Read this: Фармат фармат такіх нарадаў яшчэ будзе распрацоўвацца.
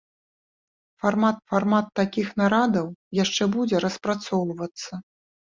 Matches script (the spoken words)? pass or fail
pass